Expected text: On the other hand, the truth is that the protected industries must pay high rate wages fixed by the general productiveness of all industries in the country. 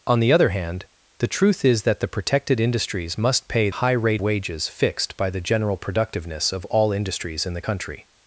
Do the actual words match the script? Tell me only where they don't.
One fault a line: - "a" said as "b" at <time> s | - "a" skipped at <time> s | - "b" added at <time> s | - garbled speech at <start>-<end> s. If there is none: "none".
none